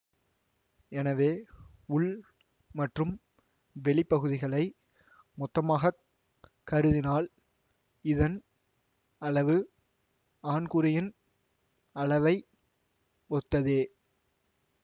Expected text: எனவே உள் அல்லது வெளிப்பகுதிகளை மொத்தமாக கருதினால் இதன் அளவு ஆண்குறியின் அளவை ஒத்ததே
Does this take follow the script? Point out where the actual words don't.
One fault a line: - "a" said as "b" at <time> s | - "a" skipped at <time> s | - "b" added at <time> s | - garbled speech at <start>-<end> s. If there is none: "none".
- "அல்லது" said as "மற்றும்" at 2.8 s